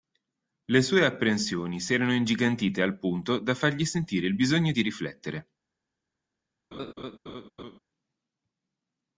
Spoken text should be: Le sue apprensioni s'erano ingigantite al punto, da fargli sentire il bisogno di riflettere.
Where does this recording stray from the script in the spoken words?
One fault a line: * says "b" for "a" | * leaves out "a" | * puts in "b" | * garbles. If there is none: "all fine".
all fine